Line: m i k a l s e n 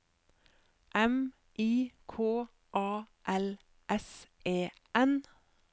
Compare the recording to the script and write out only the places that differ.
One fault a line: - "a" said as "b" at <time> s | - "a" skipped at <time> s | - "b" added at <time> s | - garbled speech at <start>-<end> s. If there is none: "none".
none